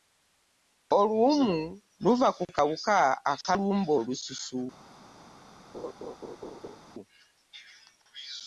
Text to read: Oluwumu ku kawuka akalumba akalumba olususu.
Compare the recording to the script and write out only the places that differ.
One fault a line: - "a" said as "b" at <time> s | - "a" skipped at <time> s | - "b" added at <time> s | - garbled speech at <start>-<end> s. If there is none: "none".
- "luva" added at 2.0 s
- "akalumba" skipped at 3.9 s